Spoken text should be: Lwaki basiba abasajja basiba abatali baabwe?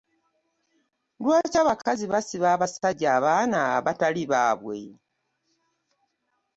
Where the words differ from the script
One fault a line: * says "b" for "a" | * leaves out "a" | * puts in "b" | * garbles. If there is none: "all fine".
* puts in "abakazi"
* says "abaana" for "basiba"